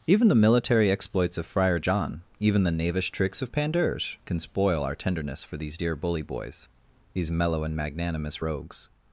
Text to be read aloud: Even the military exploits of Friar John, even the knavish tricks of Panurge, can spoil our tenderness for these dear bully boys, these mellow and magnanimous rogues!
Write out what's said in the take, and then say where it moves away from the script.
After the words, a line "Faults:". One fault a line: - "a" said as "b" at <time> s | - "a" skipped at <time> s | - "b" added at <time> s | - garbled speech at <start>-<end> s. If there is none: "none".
Even the military exploits of Friar John, even the knavish tricks of Panurge, can spoil our tenderness for these dear bully boys, these mellow and magnanimous rogues!
Faults:
none